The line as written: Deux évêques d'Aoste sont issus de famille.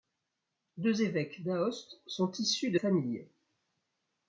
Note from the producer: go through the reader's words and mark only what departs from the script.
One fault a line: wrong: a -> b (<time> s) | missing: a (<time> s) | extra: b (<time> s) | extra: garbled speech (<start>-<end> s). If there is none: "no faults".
no faults